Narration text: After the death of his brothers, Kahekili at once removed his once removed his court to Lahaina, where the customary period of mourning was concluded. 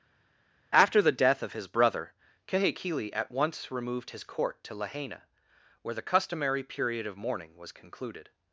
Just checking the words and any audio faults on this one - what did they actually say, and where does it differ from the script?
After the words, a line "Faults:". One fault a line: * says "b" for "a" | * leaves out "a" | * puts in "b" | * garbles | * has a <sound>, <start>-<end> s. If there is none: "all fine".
After the death of his brother, Kahekili at once removed his court to Lahaina, where the customary period of mourning was concluded.
Faults:
* says "brother" for "brothers"
* leaves out "once removed his"